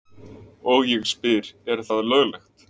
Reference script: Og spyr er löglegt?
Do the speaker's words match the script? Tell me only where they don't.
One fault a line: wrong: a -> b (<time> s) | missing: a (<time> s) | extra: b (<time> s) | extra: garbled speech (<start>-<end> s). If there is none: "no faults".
extra: ég (0.9 s)
extra: það (1.9 s)